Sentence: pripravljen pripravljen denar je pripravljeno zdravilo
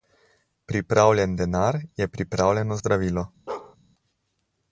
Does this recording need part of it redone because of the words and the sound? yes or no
yes